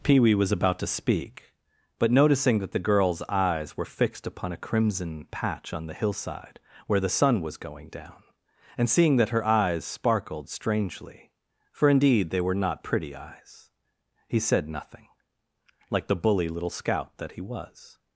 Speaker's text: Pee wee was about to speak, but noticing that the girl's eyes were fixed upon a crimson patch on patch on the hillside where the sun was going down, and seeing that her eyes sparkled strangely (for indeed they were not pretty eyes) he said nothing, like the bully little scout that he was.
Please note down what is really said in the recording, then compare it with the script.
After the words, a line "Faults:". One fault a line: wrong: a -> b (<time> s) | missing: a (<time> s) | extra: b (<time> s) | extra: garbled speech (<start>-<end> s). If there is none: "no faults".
Pee wee was about to speak, but noticing that the girl's eyes were fixed upon a crimson patch on the hillside where the sun was going down, and seeing that her eyes sparkled strangely (for indeed they were not pretty eyes) he said nothing, like the bully little scout that he was.
Faults:
missing: patch on (5.8 s)